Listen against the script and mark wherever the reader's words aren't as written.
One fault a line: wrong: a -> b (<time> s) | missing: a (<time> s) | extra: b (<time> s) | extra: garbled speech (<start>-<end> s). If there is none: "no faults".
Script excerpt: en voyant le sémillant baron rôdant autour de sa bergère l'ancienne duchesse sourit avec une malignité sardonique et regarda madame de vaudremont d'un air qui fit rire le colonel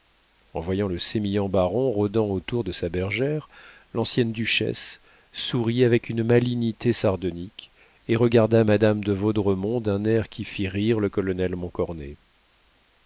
no faults